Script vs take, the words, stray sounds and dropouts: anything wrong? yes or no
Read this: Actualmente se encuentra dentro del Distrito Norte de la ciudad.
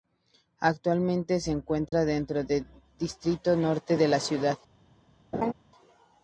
yes